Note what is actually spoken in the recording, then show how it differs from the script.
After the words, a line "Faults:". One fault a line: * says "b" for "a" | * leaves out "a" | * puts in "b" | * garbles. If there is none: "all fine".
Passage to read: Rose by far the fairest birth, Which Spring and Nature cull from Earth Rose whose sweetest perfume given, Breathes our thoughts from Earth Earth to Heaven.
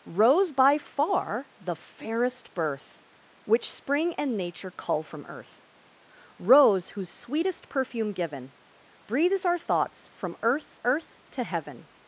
Rose by far the fairest birth, Which Spring and Nature cull from Earth Rose whose sweetest perfume given, Breathes our thoughts from Earth Earth to Heaven.
Faults:
all fine